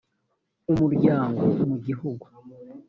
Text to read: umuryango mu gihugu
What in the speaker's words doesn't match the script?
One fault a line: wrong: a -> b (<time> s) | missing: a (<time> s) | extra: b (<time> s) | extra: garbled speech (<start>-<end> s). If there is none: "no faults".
no faults